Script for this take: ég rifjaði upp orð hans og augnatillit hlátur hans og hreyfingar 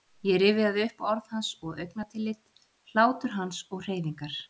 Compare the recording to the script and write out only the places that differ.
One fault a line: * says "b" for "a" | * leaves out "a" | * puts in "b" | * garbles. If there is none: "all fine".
all fine